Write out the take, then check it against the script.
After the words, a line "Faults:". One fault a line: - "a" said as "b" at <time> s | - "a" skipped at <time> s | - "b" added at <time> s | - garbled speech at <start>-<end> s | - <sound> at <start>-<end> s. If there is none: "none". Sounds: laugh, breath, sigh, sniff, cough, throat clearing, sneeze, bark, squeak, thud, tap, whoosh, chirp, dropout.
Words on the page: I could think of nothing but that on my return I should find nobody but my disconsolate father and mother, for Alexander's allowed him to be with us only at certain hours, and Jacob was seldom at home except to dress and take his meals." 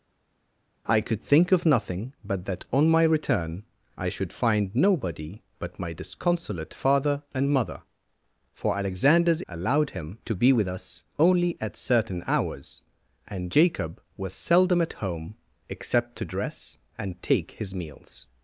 I could think of nothing but that on my return I should find nobody but my disconsolate father and mother, for Alexander's allowed him to be with us only at certain hours, and Jacob was seldom at home except to dress and take his meals."
Faults:
none